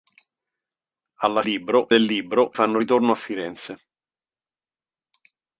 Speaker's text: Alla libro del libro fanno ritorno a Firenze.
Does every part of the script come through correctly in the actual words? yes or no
yes